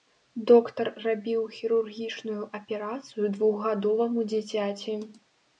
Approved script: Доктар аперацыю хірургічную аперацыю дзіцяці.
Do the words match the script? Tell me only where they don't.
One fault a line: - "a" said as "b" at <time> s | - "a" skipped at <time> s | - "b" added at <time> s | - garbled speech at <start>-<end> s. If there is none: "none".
- "аперацыю" said as "рабіў" at 1.1 s
- "двухгадоваму" added at 3.4 s